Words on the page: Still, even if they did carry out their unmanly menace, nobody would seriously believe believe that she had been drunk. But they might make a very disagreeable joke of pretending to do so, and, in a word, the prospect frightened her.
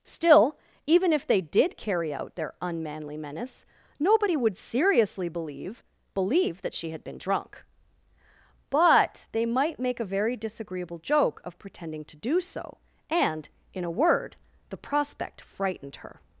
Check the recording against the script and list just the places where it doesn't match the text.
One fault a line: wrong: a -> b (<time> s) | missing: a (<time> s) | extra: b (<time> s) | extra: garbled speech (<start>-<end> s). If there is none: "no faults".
no faults